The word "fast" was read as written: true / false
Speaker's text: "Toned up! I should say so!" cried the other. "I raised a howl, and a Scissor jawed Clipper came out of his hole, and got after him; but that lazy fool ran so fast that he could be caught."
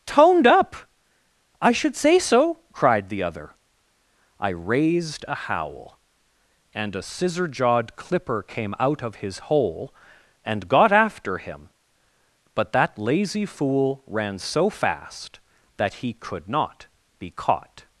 true